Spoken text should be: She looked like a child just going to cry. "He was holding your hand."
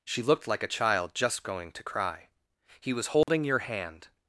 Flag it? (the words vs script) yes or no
no